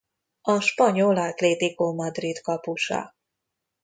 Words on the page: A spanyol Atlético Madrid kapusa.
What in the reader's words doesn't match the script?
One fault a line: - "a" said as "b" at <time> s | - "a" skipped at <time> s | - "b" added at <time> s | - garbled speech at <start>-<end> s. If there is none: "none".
none